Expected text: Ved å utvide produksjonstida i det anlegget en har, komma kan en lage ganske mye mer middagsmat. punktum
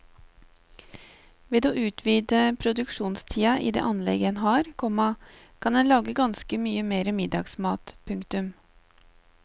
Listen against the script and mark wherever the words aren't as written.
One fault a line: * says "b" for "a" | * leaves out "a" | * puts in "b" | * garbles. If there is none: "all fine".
all fine